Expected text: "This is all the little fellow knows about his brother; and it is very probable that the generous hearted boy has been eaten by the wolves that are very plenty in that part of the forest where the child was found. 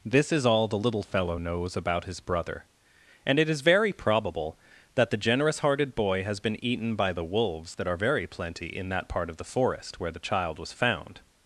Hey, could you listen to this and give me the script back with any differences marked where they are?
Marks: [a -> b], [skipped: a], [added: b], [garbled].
"This is all the little fellow knows about his brother; and it is very probable that the generous hearted boy has been eaten by the wolves that are very plenty in that part of the forest where the child was found.